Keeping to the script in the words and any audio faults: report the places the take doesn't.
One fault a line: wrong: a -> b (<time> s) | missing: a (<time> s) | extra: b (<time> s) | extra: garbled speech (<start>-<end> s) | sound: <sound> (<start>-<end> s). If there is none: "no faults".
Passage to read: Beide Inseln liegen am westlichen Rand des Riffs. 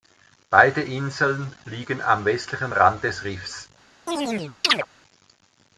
sound: chirp (4.1-4.9 s)